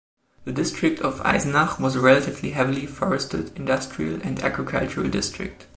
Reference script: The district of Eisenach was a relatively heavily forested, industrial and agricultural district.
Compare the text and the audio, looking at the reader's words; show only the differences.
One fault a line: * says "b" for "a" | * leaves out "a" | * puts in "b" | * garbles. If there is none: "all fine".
all fine